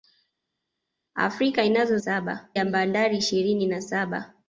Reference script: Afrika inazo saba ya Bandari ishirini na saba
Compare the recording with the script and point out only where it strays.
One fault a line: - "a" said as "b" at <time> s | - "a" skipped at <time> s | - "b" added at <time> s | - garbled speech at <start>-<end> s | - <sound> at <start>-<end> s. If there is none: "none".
none